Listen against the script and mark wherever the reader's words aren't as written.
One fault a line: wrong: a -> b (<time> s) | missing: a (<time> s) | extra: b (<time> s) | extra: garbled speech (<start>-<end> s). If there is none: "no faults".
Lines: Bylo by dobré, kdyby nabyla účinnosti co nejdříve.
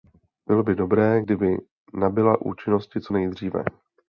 no faults